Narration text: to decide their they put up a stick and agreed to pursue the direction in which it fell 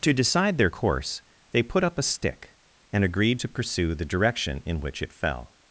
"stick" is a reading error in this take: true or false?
false